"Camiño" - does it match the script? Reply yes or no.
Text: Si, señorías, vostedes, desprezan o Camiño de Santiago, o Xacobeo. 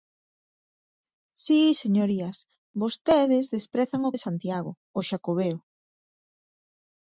no